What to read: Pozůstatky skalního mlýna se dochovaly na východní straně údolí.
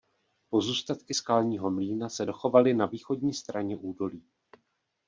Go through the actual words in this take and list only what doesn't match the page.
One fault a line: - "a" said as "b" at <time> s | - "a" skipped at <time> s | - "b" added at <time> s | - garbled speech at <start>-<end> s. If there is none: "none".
none